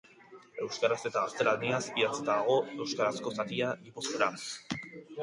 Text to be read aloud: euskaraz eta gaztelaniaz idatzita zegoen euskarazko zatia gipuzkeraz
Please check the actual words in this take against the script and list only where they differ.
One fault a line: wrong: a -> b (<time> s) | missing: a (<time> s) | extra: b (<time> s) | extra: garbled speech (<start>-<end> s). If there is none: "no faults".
wrong: zegoen -> dago (2.3 s)